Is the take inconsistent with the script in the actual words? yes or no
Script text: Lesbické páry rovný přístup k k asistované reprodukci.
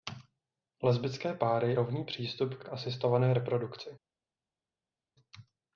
no